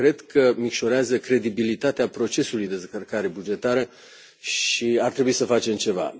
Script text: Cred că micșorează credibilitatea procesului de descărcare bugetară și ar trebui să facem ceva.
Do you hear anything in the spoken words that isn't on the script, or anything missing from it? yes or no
yes